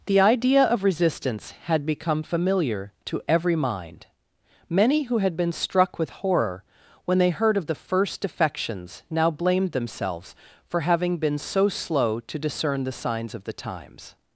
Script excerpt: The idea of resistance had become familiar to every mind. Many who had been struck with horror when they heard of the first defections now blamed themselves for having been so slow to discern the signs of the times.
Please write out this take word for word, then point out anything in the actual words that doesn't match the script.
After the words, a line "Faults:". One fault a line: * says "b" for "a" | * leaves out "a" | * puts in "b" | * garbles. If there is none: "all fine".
The idea of resistance had become familiar to every mind. Many who had been struck with horror when they heard of the first defections now blamed themselves for having been so slow to discern the signs of the times.
Faults:
all fine